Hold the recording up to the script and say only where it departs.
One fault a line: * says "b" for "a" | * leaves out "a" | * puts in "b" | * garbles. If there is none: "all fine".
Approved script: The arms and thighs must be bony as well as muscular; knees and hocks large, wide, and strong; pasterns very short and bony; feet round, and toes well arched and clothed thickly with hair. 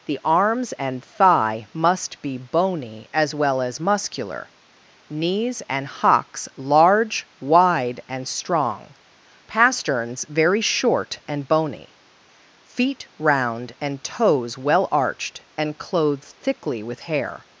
* says "thigh" for "thighs"